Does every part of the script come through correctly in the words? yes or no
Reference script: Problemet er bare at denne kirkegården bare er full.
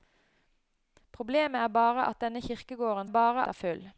yes